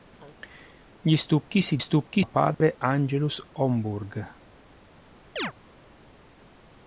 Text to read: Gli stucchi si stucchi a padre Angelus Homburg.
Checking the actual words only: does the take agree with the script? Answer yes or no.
yes